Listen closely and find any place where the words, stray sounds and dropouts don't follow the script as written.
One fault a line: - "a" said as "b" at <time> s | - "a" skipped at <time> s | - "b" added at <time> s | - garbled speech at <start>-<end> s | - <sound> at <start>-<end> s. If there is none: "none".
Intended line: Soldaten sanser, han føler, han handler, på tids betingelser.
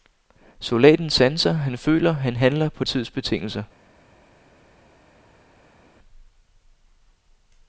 none